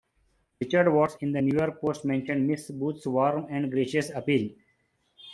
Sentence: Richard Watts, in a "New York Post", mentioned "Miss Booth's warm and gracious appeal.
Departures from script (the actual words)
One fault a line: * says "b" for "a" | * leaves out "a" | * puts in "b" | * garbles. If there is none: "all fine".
* says "the" for "a"